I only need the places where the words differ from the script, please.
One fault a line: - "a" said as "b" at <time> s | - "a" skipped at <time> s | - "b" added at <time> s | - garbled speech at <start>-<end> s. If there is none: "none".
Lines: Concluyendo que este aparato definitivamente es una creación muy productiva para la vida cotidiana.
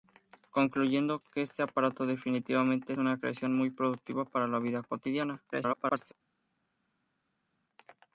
- "es" skipped at 2.9 s
- garbled speech at 5.5-6.1 s